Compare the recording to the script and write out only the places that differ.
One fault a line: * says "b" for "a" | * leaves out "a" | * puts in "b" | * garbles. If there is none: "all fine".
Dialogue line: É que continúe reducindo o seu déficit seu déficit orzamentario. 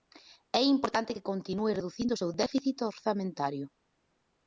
* puts in "importante"
* leaves out "seu déficit"